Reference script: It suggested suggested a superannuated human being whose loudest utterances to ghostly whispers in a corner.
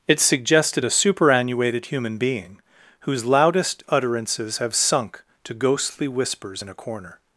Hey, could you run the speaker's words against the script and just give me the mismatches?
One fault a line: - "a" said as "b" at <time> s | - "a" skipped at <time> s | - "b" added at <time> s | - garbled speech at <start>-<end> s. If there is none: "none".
- "suggested" skipped at 0.8 s
- "have sunk" added at 4.6 s